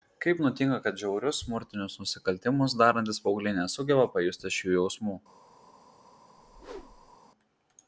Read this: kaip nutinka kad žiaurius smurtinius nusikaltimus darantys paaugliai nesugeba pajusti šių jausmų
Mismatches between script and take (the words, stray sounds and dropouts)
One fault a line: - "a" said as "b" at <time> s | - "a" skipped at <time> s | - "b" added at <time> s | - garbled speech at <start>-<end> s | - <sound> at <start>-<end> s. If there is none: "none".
- whoosh at 6.4-7.2 s